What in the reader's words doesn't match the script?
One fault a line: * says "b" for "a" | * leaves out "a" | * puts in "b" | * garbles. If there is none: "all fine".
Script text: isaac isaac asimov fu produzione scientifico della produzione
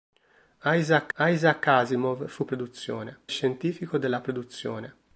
all fine